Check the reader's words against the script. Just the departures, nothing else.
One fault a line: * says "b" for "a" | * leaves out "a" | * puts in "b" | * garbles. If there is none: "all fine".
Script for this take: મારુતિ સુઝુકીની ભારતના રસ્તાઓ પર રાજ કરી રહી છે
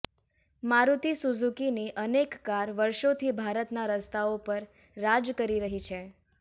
* puts in "અનેક કાર વર્ષોથી"